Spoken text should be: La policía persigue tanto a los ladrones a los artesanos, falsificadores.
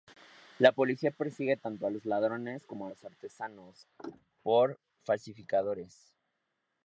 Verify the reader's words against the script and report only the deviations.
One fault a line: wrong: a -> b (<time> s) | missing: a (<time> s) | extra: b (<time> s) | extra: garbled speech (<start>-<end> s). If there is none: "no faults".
extra: como (2.6 s)
extra: por (4.4 s)